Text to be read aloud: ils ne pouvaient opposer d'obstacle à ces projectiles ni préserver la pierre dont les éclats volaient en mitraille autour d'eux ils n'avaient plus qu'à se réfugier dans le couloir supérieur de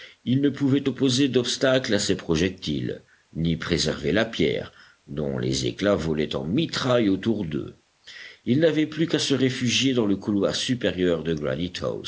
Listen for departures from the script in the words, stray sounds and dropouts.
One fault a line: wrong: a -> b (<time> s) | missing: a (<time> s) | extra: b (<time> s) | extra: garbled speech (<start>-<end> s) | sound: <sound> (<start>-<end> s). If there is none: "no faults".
no faults